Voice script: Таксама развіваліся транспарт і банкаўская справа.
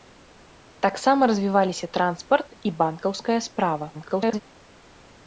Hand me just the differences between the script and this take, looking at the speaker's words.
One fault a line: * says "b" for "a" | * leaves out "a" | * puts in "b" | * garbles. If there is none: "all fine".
* garbles